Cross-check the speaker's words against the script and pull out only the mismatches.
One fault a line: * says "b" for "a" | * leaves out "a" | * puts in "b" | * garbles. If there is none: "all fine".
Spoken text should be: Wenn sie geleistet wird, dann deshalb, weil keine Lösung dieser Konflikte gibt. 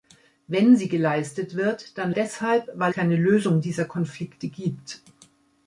all fine